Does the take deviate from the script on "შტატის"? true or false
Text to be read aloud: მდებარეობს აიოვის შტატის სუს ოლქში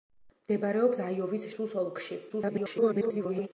true